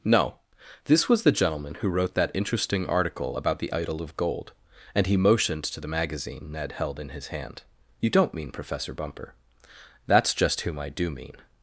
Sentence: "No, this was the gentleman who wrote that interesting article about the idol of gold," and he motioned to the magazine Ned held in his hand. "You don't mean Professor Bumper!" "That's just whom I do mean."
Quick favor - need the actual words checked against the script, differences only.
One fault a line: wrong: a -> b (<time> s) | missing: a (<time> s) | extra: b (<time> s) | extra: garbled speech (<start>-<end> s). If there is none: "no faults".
no faults